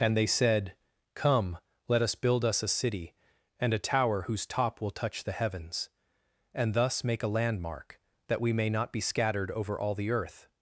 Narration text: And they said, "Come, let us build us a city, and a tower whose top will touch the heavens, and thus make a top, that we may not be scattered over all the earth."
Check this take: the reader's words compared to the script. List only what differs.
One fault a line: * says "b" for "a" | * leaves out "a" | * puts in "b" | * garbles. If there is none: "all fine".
* says "landmark" for "top"